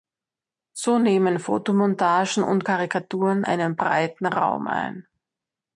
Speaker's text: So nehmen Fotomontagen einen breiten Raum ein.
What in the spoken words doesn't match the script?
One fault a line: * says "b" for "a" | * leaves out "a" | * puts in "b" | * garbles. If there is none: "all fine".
* puts in "und Karikaturen"